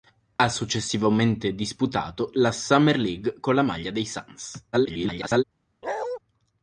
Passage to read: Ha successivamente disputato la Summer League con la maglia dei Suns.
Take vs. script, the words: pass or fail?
fail